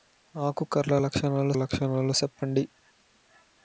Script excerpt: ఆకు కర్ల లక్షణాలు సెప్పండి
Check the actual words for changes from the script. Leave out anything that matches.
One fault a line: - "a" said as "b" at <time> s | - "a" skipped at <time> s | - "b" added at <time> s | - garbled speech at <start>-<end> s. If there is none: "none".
- "లక్షణాలు" added at 1.5 s